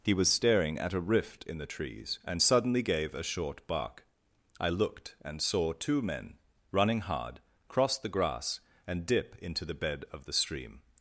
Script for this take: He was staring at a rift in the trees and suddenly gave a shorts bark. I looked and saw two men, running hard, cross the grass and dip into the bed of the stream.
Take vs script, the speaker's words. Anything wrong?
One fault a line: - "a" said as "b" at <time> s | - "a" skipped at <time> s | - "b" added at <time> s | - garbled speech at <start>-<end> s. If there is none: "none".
- "shorts" said as "short" at 3.2 s